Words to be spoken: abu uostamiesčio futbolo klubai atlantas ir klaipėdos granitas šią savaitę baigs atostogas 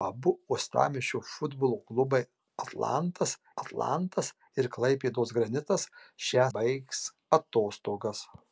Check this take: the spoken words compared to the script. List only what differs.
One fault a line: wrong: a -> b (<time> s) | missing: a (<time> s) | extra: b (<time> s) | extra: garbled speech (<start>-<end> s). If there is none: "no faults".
extra: atlantas (3.6 s)
missing: savaitę (6.5 s)